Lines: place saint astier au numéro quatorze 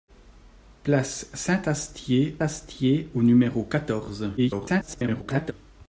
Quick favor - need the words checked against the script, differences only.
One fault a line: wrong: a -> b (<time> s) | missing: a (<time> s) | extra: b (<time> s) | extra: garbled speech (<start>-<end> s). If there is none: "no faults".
extra: astier (2.4 s)
extra: garbled speech (4.4-5.5 s)